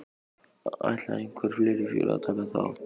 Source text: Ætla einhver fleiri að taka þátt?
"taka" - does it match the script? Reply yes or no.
yes